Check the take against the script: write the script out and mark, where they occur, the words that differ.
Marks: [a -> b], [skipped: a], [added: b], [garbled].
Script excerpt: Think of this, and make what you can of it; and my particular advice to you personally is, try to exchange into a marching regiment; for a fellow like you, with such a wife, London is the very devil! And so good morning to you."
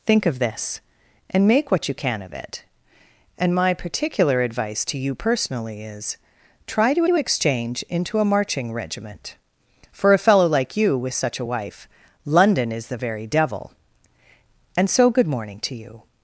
Think of this, and make what you can of it; and my particular advice to you personally is, try to [added: to] exchange into a marching regiment; for a fellow like you, with such a wife, London is the very devil! And so good morning to you."